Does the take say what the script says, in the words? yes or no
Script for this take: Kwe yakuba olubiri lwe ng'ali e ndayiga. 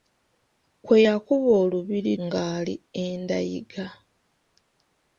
no